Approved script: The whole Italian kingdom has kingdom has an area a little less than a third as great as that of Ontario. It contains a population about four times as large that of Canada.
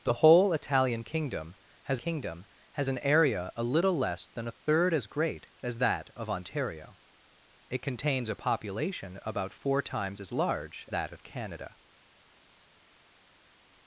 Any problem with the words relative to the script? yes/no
no